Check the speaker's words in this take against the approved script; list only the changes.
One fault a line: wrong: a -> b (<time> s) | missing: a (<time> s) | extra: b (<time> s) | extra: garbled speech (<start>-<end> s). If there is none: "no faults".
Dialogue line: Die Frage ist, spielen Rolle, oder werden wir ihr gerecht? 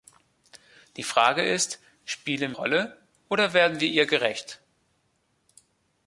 no faults